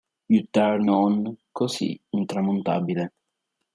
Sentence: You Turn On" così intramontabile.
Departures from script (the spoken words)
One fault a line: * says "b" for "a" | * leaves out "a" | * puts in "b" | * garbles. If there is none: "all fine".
all fine